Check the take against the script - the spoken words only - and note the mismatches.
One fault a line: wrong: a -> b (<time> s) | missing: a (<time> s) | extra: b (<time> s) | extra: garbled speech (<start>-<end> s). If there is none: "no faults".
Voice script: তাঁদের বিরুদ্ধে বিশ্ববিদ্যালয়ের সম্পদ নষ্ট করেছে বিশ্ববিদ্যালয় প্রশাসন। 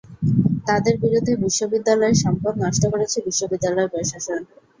no faults